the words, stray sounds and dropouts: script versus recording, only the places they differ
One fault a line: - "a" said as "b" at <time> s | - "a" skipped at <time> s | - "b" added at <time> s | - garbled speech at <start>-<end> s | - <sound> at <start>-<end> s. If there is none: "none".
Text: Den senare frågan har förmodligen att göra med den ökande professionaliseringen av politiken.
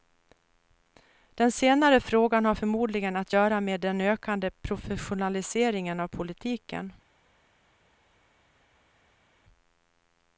none